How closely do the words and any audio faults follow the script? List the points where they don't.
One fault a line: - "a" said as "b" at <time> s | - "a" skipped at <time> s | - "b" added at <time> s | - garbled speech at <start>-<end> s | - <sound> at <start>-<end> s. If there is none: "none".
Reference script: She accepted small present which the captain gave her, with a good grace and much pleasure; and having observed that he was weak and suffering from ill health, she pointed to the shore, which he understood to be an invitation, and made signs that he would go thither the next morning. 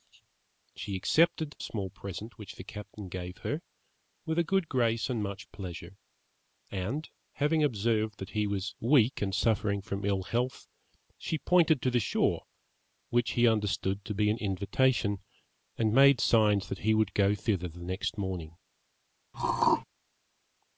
- throat clearing at 19.3-19.8 s